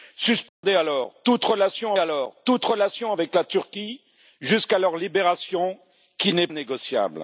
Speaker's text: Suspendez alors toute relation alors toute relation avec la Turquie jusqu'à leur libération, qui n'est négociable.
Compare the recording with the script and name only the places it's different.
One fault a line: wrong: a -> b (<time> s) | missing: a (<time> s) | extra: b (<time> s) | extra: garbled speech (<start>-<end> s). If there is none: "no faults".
no faults